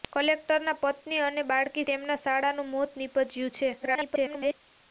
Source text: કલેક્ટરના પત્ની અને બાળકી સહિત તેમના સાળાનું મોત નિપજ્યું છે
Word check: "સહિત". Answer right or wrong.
wrong